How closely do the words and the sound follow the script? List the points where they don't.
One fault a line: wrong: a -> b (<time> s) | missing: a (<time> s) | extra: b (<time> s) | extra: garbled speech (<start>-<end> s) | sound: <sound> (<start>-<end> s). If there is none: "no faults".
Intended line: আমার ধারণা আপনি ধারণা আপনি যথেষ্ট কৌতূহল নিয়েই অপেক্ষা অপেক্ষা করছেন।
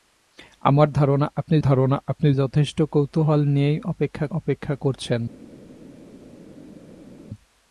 no faults